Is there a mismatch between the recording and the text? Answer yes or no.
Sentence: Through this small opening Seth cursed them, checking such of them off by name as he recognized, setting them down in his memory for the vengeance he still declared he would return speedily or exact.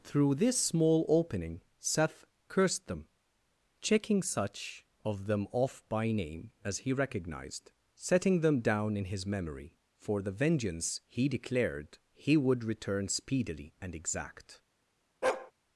yes